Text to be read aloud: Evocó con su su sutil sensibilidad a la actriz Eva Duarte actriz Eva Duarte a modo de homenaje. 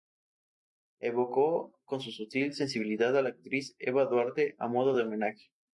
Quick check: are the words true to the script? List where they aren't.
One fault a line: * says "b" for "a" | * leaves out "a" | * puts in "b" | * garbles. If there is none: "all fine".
* leaves out "su"
* leaves out "actriz Eva Duarte"